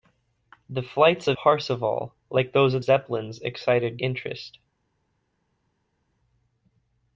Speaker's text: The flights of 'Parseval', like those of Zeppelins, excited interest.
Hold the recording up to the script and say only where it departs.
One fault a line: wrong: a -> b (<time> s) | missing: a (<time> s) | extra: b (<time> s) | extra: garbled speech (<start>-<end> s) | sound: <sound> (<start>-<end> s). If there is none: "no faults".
no faults